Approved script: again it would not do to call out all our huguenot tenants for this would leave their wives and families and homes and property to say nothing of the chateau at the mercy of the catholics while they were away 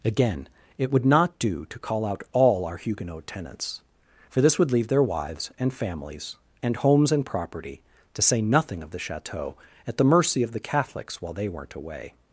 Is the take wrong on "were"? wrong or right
wrong